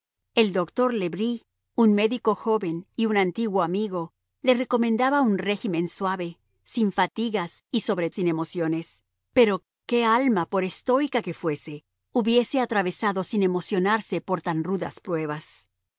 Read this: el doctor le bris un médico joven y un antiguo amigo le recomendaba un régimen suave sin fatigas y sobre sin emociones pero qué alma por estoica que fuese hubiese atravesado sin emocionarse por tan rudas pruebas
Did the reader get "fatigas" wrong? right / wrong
right